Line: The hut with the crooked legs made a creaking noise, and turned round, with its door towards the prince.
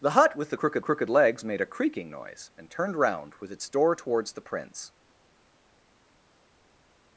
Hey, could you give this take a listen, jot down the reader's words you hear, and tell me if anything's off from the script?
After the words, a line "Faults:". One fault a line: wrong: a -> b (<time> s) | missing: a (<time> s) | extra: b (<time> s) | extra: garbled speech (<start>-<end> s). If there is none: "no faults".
The hut with the crooked crooked legs made a creaking noise, and turned round, with its door towards the prince.
Faults:
extra: crooked (0.8 s)